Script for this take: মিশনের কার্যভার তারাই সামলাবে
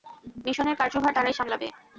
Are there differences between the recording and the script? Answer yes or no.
no